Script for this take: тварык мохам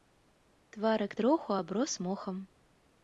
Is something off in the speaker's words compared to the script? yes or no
yes